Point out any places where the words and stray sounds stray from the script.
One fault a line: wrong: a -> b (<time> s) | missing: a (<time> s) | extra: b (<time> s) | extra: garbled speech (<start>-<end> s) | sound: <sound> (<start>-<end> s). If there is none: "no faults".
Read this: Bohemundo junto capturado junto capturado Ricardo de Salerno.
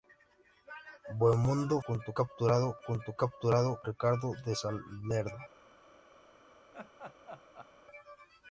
sound: laugh (6.7-7.7 s)